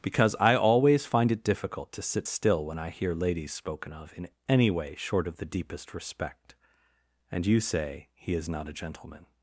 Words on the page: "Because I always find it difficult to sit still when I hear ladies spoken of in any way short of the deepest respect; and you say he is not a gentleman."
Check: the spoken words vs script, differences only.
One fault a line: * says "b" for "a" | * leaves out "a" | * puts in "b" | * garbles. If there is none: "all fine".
all fine